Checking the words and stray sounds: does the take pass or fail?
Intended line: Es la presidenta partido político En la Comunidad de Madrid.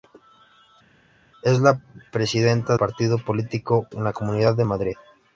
pass